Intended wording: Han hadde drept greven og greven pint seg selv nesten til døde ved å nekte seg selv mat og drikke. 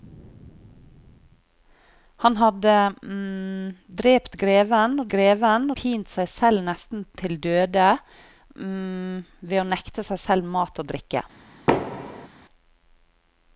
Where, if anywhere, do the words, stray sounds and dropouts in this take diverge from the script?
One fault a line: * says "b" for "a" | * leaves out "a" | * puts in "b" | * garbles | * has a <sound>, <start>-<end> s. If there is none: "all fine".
* has a thud, 11.7-12.3 s